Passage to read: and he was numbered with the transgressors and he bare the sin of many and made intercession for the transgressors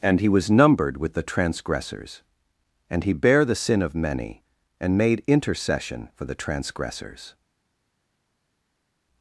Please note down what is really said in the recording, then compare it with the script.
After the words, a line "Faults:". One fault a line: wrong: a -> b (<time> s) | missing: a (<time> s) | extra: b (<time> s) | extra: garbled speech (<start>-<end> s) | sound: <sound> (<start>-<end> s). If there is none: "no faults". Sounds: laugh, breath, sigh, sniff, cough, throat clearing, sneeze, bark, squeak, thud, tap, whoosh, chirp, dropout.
and he was numbered with the transgressors and he bare the sin of many and made intercession for the transgressors
Faults:
no faults